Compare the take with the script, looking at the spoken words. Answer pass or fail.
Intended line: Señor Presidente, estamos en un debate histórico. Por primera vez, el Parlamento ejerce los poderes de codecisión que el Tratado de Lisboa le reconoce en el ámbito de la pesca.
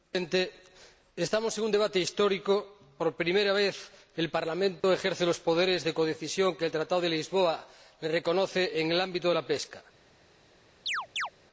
pass